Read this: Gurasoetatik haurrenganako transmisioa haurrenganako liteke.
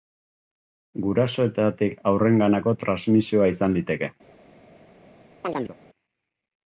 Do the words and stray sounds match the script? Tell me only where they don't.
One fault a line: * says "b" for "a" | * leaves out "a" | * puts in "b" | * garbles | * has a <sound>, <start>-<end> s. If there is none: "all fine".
* says "izan" for "haurrenganako"
* has a chirp, 5.4-5.8 s